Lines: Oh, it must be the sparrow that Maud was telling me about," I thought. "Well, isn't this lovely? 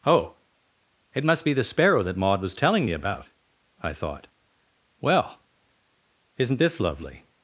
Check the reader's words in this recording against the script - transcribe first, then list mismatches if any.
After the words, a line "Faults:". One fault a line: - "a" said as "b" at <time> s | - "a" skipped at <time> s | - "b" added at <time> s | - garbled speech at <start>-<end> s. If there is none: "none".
Oh, it must be the sparrow that Maud was telling me about," I thought. "Well, isn't this lovely?
Faults:
none